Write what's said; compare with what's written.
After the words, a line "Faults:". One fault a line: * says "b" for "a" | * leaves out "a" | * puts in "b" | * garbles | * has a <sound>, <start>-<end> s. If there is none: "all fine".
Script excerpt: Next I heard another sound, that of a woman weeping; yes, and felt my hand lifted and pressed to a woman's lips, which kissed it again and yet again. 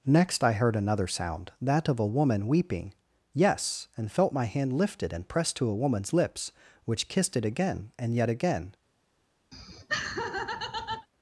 Next I heard another sound, that of a woman weeping; yes, and felt my hand lifted and pressed to a woman's lips, which kissed it again and yet again.
Faults:
* has a laugh, 9.5-11.1 s